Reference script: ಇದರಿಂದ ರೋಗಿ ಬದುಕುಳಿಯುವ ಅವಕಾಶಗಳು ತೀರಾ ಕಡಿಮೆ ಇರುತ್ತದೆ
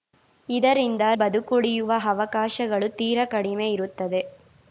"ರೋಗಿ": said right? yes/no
no